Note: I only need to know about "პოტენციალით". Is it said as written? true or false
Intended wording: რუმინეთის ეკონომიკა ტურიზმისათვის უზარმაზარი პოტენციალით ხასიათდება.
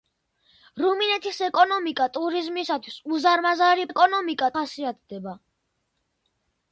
false